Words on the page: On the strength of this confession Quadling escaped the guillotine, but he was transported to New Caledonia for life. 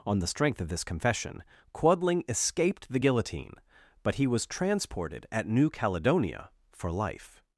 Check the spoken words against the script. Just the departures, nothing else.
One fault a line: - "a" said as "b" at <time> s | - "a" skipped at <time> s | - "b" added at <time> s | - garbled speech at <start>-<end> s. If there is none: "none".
- "to" said as "at" at 5.3 s